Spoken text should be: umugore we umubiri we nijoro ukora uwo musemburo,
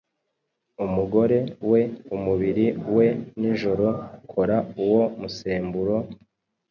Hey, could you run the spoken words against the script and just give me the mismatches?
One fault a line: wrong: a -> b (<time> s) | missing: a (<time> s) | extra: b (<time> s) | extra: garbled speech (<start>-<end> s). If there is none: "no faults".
no faults